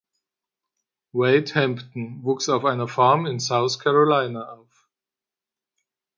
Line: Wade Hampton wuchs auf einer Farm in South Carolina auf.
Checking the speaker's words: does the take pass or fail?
pass